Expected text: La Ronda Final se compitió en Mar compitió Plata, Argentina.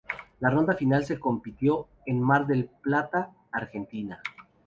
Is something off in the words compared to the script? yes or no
yes